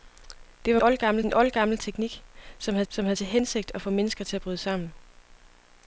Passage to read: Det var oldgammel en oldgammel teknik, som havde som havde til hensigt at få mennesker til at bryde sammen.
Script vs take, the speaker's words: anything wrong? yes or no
no